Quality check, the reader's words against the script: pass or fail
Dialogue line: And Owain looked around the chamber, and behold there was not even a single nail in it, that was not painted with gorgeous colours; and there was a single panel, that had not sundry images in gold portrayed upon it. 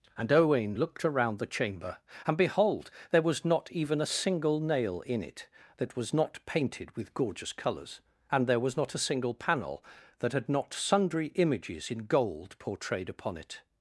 fail